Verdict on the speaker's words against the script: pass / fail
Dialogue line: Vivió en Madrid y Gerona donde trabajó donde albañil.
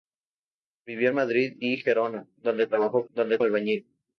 pass